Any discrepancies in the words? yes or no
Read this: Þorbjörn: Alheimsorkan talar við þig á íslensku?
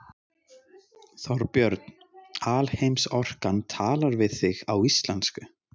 no